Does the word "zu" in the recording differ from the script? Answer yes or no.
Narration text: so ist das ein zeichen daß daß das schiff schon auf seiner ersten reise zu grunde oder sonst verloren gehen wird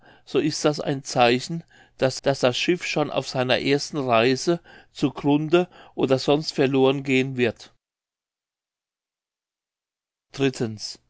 no